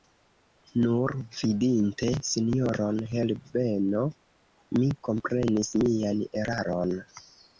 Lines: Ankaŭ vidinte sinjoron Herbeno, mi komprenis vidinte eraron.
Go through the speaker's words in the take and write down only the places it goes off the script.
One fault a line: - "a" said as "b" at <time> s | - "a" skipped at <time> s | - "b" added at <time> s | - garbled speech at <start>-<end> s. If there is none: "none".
- "Ankaŭ" said as "Nur" at 0.8 s
- "vidinte" said as "mian" at 5.8 s